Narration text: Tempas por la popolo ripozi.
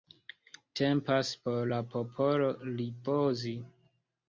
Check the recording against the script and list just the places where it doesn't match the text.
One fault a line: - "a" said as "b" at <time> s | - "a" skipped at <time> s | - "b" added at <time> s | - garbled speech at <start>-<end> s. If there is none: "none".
none